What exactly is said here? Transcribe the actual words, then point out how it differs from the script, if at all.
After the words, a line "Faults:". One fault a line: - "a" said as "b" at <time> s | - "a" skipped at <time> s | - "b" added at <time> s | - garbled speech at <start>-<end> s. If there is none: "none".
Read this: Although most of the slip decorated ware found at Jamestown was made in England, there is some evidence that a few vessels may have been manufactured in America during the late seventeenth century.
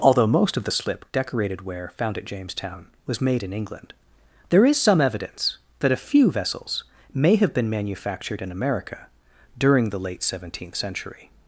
Although most of the slip decorated ware found at Jamestown was made in England, there is some evidence that a few vessels may have been manufactured in America during the late seventeenth century.
Faults:
none